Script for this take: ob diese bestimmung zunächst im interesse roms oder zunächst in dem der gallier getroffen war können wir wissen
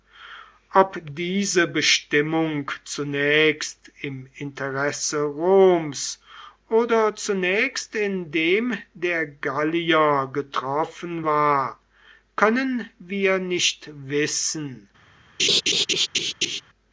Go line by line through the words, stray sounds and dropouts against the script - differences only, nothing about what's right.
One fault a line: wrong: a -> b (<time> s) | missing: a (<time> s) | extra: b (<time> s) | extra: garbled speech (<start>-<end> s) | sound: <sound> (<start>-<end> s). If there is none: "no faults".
extra: nicht (13.4 s)
sound: laugh (15.4-16.6 s)